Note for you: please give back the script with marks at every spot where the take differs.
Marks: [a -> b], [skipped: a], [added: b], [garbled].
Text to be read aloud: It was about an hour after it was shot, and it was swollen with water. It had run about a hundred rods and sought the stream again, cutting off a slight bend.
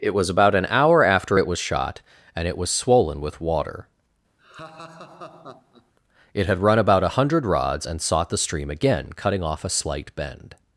It was about an hour after it was shot, and it was swollen with water. It had run about a hundred rods and sought the stream again, cutting off a slight bend.